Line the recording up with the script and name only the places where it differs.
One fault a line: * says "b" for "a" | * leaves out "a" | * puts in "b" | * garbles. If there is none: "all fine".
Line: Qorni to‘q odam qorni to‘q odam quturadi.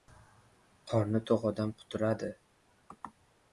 * leaves out "qorni to‘q odam"